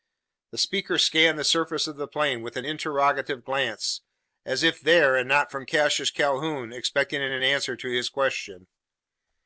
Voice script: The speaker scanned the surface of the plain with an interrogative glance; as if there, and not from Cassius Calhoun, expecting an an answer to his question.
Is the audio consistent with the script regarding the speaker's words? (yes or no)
yes